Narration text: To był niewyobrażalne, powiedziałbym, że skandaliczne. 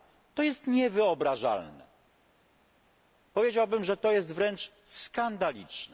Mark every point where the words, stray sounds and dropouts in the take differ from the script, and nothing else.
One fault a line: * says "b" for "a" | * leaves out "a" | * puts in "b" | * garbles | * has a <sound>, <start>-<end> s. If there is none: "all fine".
* says "jest" for "był"
* puts in "to jest wręcz"